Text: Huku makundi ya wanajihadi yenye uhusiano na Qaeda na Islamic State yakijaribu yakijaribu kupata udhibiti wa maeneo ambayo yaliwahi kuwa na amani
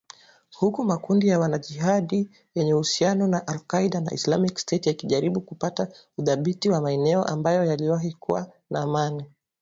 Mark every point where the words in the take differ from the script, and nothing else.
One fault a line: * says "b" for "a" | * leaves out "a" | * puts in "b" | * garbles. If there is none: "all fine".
* puts in "al"
* leaves out "yakijaribu"